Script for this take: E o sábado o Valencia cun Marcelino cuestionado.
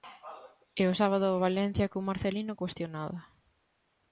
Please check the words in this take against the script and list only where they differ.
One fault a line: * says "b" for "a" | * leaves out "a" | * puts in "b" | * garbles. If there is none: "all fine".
all fine